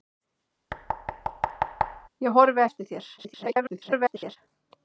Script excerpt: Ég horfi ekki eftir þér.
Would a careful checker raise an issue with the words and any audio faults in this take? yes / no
yes